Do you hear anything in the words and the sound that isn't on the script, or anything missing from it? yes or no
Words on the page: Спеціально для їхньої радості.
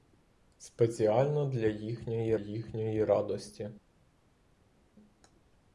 yes